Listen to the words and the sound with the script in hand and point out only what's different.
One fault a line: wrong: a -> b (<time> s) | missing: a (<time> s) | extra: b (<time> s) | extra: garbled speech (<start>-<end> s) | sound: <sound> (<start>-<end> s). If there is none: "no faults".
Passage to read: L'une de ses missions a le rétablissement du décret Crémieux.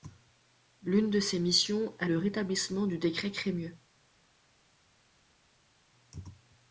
no faults